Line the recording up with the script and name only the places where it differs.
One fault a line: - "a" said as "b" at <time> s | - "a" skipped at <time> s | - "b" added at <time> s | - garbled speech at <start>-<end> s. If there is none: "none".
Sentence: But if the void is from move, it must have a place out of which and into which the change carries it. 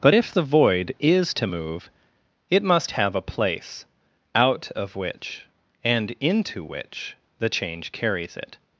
- "from" said as "to" at 1.4 s